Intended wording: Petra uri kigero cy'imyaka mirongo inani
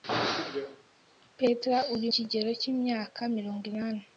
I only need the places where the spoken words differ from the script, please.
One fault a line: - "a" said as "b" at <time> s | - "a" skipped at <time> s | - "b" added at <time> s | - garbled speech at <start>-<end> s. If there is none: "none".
none